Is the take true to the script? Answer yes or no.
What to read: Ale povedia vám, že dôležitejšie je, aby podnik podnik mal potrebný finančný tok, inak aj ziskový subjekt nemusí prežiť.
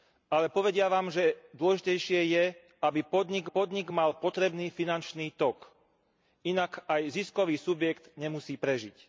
yes